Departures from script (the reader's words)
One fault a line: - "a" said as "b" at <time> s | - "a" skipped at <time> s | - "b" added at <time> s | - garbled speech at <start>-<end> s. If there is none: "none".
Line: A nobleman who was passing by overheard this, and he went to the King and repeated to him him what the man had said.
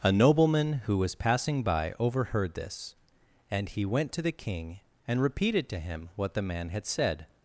- "him" skipped at 6.1 s